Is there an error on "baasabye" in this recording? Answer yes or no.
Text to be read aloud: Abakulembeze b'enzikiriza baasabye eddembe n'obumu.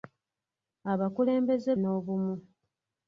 yes